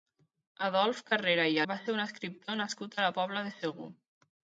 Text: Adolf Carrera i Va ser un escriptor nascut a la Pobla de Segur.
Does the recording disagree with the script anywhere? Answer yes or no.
no